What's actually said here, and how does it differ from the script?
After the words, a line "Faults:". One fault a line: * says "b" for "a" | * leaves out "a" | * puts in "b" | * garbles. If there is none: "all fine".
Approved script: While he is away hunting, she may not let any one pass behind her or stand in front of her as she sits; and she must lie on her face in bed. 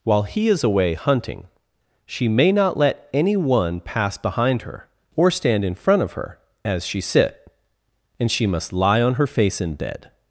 While he is away hunting, she may not let any one pass behind her or stand in front of her as she sit; and she must lie on her face in bed.
Faults:
* says "sit" for "sits"